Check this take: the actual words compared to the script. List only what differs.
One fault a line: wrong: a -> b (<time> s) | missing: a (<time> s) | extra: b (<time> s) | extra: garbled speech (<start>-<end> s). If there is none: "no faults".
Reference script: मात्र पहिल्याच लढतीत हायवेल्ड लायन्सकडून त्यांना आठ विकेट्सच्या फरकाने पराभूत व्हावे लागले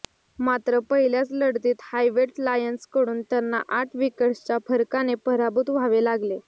no faults